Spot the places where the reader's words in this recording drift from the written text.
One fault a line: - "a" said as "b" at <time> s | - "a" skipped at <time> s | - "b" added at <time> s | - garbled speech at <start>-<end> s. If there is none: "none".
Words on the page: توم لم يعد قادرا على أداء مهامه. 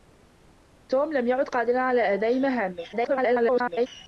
- garbled speech at 2.9-3.9 s